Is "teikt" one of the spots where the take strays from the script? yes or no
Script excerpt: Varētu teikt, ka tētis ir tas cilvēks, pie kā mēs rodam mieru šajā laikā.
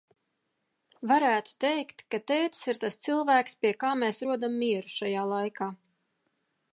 no